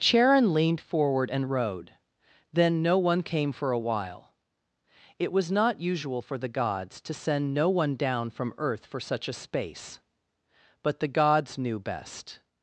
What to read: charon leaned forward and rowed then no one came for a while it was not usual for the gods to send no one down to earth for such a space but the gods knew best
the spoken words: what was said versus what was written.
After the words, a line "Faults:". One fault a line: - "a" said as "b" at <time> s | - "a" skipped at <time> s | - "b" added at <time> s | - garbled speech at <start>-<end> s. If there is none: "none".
charon leaned forward and rowed then no one came for a while it was not usual for the gods to send no one down from earth for such a space but the gods knew best
Faults:
- "to" said as "from" at 8.3 s